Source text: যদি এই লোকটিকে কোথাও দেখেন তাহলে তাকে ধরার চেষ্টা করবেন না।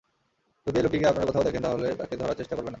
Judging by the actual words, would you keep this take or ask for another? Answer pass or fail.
fail